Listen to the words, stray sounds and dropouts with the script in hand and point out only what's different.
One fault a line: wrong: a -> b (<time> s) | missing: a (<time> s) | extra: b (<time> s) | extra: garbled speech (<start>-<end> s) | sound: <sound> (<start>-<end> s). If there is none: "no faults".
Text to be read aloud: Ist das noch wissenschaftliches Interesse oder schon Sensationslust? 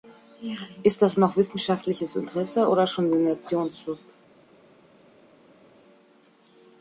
no faults